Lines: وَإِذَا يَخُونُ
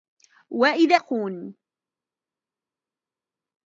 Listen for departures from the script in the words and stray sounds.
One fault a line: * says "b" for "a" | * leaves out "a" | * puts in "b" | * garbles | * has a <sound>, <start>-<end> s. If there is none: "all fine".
all fine